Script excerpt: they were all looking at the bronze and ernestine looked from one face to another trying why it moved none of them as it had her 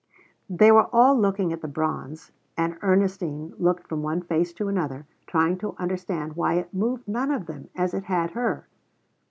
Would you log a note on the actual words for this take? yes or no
yes